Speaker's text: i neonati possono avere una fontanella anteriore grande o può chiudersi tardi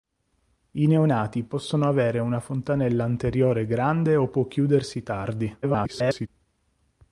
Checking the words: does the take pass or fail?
fail